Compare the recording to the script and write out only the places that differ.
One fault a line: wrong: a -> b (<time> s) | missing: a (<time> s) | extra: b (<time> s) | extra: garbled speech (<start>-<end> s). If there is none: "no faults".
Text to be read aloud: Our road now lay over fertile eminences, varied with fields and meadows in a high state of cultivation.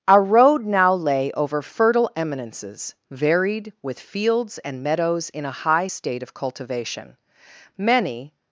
extra: Many (7.8 s)